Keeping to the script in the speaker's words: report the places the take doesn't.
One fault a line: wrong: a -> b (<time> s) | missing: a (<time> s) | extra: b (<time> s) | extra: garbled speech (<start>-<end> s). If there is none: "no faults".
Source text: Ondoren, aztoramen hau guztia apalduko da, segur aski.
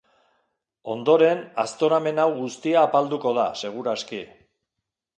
no faults